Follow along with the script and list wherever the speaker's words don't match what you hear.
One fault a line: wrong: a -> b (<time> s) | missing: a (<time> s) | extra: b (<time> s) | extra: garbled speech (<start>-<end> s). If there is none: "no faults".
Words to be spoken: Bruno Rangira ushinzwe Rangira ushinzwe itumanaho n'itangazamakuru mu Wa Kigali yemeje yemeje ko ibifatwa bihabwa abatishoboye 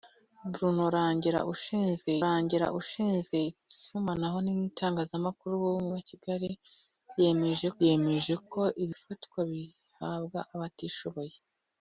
no faults